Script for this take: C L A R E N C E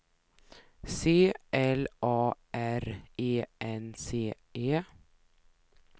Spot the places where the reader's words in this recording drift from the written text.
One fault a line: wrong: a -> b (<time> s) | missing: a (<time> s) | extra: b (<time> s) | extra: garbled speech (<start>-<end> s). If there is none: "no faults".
no faults